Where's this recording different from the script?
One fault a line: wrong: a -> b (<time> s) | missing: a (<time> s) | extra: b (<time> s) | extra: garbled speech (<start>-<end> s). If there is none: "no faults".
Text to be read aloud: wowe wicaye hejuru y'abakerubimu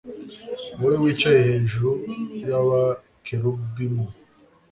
no faults